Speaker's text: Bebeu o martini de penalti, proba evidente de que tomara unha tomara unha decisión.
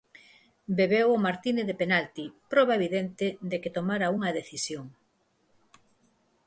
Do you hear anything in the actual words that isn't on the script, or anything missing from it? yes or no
yes